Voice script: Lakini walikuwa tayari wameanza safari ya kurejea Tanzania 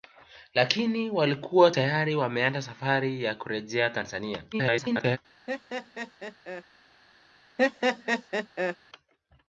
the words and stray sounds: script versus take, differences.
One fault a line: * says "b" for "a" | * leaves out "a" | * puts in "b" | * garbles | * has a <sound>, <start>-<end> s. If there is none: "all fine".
* garbles
* has a laugh, 5.5-6.6 s
* has a laugh, 7.6-8.8 s